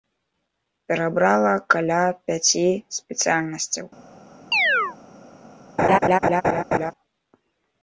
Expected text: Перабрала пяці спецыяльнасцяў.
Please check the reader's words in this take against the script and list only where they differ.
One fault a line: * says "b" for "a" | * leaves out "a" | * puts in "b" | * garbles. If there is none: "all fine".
* puts in "каля"